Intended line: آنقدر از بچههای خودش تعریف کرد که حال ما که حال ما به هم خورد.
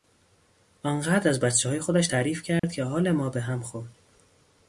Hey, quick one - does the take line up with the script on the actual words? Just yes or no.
no